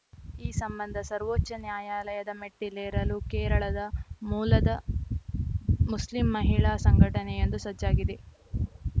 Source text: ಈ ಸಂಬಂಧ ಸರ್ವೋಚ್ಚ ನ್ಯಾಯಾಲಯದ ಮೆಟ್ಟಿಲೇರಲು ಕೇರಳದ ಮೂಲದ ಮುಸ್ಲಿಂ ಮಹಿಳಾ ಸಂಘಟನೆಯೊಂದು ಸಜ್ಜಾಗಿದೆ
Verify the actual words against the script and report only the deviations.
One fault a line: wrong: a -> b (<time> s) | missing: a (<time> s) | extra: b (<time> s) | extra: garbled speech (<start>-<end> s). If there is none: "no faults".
no faults